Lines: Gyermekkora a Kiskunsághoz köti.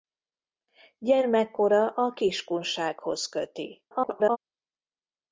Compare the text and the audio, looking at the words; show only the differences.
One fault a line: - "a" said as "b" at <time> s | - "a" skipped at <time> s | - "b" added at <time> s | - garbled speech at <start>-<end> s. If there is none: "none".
- garbled speech at 3.9-4.4 s